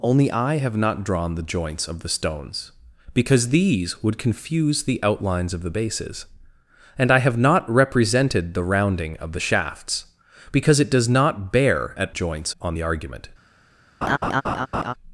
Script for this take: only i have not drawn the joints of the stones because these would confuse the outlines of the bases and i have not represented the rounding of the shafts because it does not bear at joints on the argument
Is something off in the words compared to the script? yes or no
no